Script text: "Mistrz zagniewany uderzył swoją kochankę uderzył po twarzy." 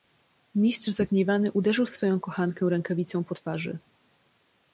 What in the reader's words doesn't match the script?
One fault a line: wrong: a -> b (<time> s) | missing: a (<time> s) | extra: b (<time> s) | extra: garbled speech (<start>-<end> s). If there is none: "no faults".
wrong: uderzył -> rękawicą (2.7 s)